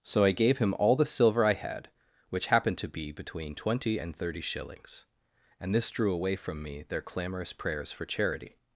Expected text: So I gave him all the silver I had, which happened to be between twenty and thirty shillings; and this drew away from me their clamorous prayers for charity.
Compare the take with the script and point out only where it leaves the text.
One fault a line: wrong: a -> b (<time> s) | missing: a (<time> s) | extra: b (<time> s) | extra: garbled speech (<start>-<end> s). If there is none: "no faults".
no faults